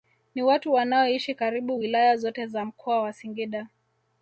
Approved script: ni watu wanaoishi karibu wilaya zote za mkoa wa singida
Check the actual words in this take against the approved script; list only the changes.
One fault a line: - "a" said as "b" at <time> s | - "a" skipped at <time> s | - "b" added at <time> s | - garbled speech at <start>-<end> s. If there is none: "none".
none